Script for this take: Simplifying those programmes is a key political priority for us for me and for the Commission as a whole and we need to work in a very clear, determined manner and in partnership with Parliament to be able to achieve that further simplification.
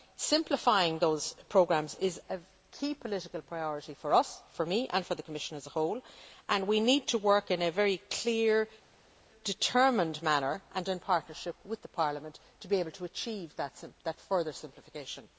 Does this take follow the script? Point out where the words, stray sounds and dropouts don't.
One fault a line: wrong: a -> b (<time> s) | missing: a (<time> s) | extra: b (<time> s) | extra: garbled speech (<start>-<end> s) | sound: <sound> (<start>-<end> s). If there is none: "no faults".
no faults